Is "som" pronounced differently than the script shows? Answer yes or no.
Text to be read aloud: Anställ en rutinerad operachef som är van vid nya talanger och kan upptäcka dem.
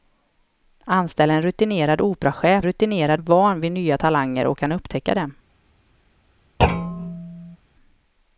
yes